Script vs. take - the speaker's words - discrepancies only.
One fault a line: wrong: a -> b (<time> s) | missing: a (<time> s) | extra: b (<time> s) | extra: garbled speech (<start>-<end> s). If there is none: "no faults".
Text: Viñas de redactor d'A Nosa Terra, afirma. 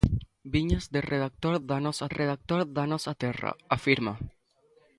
extra: redactor d'A Nosa (2.1 s)